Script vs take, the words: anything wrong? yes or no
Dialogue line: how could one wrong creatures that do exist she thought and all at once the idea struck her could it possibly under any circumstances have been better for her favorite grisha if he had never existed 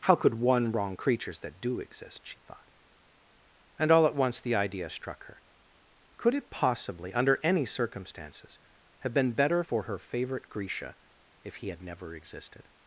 no